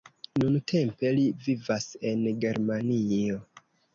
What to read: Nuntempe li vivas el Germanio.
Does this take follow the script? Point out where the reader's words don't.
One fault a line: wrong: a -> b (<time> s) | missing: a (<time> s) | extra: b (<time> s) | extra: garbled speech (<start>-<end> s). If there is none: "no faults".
wrong: el -> en (2.1 s)